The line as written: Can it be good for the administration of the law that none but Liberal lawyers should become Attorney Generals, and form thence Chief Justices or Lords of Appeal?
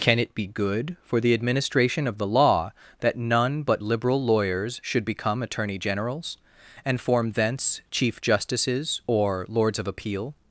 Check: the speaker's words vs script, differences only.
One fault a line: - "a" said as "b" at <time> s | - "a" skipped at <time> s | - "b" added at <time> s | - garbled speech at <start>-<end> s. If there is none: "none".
none